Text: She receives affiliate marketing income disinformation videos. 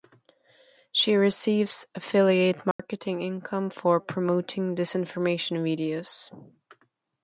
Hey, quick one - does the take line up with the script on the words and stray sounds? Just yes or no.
no